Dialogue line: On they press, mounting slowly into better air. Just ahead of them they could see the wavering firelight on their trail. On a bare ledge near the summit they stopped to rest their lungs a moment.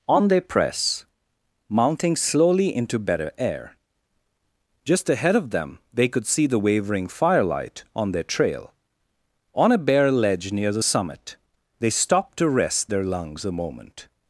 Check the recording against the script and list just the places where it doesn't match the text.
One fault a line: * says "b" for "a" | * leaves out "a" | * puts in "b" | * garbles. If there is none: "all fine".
all fine